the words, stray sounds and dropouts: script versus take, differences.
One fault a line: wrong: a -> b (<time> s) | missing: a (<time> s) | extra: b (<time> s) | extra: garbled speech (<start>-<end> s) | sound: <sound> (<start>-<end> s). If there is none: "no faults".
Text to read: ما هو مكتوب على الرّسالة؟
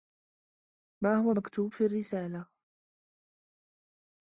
wrong: على -> في (1.7 s)